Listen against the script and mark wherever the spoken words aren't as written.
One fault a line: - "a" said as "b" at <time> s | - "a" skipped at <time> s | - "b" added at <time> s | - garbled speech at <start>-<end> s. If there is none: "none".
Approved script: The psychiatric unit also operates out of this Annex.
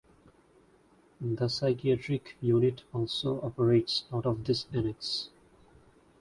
none